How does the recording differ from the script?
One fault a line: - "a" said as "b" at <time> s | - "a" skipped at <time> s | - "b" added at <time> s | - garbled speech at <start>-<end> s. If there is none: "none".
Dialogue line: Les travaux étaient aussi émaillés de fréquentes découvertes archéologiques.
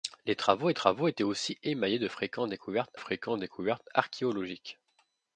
- "travaux" added at 0.7 s
- "fréquentes découvertes" added at 2.9 s